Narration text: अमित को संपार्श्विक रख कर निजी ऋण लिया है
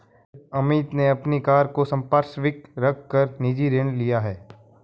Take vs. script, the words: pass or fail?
fail